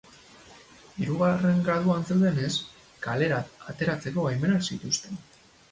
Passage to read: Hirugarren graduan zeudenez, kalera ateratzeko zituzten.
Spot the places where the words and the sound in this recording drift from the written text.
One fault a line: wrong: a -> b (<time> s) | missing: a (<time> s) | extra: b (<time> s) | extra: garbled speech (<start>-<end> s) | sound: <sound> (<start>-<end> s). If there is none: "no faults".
extra: baimenak (4.3 s)